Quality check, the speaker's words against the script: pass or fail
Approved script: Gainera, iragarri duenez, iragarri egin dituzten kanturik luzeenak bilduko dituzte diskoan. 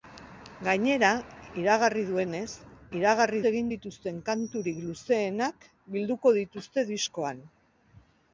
pass